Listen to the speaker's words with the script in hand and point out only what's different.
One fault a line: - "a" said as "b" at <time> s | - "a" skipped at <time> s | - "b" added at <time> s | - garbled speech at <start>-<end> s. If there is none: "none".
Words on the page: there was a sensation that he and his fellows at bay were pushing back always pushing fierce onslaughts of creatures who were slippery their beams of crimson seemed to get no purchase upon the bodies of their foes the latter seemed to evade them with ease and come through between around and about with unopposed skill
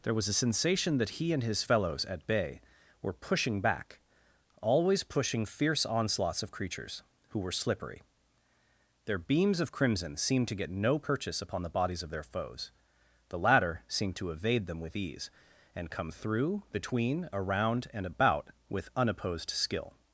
none